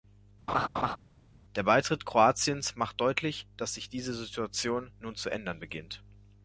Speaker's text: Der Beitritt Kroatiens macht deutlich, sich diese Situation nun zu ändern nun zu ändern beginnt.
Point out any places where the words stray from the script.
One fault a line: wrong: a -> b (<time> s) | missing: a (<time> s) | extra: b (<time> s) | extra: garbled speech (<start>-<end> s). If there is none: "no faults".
extra: dass (3.6 s)
missing: nun zu ändern (5.6 s)